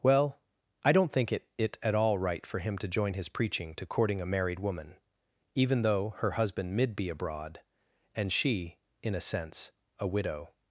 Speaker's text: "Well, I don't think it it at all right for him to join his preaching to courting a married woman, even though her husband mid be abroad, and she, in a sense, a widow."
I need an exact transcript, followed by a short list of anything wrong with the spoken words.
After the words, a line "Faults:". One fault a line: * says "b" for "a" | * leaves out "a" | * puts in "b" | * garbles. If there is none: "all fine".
"Well, I don't think it it at all right for him to join his preaching to courting a married woman, even though her husband mid be abroad, and she, in a sense, a widow."
Faults:
all fine